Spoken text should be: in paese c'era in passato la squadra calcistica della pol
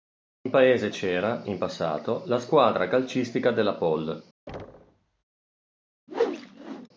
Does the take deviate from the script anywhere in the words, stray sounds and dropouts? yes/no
yes